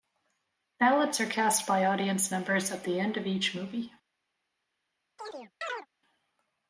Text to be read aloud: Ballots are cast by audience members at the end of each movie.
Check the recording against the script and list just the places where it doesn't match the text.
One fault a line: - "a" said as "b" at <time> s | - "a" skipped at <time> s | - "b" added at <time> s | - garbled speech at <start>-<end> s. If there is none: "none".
none